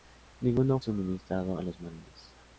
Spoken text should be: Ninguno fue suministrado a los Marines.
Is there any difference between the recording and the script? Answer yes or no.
yes